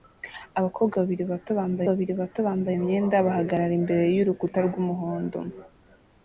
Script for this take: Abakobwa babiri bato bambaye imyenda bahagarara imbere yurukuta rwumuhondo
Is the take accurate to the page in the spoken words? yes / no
no